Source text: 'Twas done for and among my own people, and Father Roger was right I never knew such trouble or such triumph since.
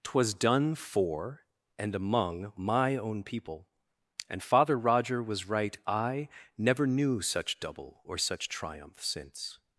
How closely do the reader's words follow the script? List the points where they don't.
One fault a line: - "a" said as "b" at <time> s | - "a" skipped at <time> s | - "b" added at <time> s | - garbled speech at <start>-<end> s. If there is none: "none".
- "trouble" said as "double" at 7.6 s